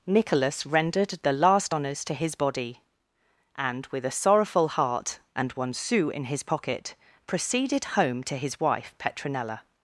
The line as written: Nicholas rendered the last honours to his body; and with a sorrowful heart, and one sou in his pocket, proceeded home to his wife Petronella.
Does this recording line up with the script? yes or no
yes